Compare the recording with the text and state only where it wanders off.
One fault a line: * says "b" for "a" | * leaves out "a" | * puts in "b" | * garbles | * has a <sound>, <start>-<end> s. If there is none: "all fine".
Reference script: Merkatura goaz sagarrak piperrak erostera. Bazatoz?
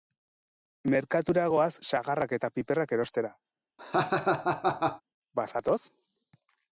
* puts in "eta"
* has a laugh, 3.8-5.0 s